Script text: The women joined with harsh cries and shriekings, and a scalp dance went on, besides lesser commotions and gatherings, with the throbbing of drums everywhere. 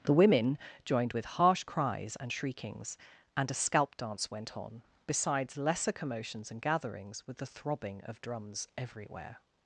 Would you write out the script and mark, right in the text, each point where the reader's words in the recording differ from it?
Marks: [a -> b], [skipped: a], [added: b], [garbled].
The women joined with harsh cries and shriekings, and a scalp dance went on, besides lesser commotions and gatherings, with the throbbing of drums everywhere.